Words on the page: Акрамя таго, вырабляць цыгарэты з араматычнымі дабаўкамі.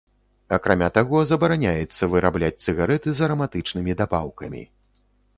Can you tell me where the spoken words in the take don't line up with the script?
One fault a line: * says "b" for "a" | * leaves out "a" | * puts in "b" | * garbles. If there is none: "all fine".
* puts in "забараняецца"